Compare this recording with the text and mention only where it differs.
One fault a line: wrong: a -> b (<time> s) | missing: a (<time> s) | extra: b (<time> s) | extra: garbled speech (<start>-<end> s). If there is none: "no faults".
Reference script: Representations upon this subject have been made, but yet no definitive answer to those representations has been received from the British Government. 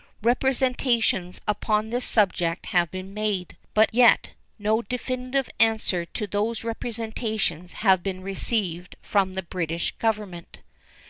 no faults